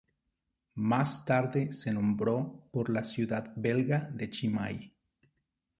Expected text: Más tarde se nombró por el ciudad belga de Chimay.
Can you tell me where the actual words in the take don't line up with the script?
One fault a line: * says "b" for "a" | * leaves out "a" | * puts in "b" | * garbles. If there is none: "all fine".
* says "la" for "el"